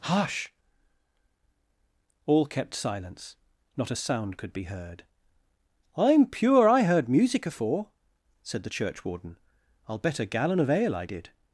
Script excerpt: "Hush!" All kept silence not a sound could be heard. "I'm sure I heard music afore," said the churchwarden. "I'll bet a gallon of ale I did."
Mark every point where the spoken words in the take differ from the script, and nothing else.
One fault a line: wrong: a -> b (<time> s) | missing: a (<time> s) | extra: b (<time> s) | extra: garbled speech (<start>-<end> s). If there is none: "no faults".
wrong: sure -> pure (6.2 s)